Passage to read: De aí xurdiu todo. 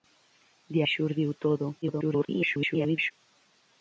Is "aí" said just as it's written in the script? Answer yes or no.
no